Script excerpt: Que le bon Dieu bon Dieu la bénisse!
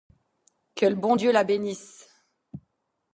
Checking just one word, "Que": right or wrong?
right